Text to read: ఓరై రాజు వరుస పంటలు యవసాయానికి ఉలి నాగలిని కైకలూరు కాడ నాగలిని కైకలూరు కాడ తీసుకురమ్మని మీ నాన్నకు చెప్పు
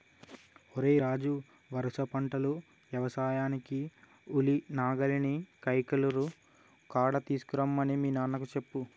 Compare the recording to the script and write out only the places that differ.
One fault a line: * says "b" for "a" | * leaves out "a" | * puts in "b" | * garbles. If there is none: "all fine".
* leaves out "నాగలిని కైకలూరు కాడ"